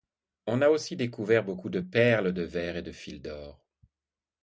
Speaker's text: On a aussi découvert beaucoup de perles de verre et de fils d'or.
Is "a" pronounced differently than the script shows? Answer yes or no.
no